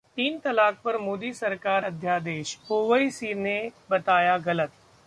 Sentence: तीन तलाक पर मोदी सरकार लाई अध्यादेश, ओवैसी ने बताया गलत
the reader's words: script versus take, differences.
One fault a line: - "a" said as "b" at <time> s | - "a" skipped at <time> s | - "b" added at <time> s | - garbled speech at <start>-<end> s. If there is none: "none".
- "लाई" skipped at 1.8 s